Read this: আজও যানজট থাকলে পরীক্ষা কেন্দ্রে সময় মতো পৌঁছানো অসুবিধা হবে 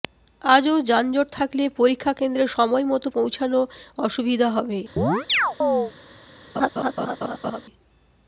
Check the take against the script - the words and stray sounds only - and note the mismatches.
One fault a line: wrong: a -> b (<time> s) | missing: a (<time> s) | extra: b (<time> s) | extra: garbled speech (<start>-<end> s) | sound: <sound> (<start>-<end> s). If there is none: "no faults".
sound: chirp (5.0-5.9 s)
sound: laugh (6.5-7.6 s)